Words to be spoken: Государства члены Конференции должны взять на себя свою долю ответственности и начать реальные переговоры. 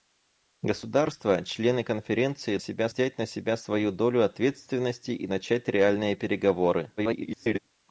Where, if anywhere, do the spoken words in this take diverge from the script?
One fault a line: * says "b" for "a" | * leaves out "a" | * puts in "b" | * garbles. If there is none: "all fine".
* says "себя" for "должны"
* garbles